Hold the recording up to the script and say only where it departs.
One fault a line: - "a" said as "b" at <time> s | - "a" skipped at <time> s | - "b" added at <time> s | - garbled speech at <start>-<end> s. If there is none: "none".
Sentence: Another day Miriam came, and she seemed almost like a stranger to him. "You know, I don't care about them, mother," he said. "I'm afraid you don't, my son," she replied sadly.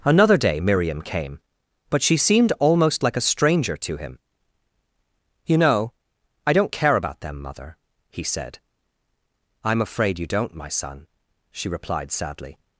- "and" said as "but" at 1.9 s